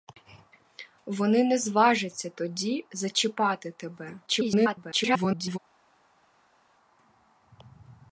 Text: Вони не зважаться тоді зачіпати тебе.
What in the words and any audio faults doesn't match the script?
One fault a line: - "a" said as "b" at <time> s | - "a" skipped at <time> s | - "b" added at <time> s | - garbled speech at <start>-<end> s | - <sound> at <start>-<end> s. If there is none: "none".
- garbled speech at 4.3-5.6 s